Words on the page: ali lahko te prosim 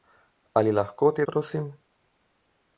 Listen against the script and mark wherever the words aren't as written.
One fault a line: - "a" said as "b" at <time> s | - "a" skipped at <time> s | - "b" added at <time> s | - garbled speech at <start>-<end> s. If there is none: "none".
none